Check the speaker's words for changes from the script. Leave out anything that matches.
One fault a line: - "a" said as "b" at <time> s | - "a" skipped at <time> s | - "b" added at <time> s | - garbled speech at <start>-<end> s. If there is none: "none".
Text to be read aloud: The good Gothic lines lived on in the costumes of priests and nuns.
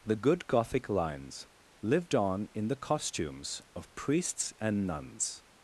none